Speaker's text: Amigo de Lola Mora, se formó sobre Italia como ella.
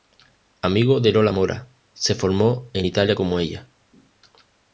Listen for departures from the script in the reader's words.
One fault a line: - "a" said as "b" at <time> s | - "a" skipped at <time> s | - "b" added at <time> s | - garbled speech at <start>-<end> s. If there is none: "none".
- "sobre" said as "en" at 2.7 s